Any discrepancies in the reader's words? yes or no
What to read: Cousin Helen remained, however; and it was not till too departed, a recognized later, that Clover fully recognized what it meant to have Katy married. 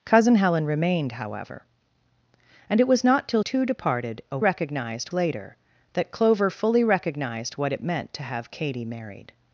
no